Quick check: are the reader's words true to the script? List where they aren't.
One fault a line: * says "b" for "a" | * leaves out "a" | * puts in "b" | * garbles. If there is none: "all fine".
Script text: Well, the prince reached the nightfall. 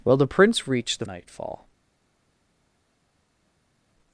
all fine